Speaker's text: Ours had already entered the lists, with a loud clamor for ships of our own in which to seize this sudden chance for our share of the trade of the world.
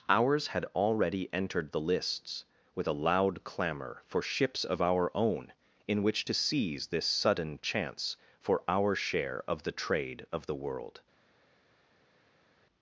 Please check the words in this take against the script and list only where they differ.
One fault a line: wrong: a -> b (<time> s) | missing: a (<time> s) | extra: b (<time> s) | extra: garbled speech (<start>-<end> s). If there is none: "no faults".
no faults